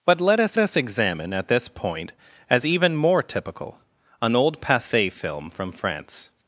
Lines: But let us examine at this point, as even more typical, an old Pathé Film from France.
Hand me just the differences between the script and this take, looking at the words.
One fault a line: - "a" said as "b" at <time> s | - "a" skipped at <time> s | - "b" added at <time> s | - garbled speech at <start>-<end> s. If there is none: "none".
- "us" added at 0.6 s